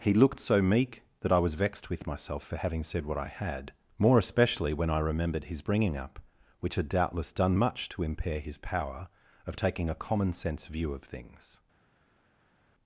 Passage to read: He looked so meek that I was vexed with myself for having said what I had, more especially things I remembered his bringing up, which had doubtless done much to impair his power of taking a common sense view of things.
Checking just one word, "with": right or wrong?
right